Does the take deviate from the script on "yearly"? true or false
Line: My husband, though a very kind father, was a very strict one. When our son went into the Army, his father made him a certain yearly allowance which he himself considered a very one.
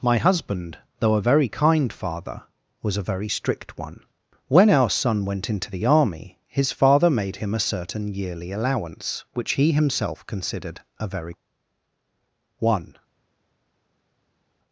false